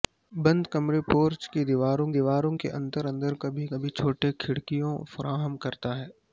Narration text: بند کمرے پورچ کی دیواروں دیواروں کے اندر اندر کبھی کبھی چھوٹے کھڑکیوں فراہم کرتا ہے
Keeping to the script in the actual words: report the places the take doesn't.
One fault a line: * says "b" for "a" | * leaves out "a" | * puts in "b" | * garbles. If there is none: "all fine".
all fine